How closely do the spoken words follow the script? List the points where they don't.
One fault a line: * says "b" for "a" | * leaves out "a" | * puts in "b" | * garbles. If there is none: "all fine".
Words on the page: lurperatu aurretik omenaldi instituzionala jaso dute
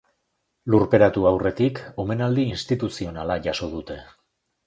all fine